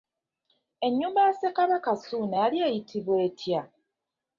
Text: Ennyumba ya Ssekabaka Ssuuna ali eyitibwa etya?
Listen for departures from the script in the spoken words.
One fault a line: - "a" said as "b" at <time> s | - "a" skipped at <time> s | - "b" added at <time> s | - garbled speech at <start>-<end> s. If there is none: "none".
- "ali" said as "yali" at 2.4 s